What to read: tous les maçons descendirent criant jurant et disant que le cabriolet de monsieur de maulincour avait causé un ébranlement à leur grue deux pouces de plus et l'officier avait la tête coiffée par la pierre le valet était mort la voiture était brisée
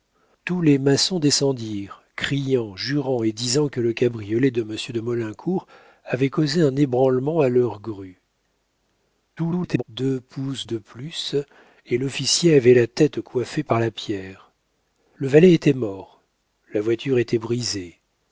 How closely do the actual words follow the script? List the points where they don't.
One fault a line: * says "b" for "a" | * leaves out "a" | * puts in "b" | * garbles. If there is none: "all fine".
* garbles